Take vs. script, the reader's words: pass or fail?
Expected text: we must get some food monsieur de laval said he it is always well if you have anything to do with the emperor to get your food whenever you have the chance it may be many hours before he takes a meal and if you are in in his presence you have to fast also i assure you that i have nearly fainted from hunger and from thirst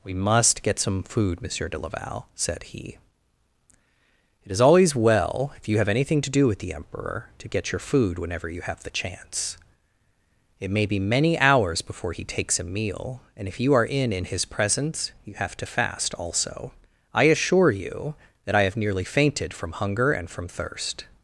pass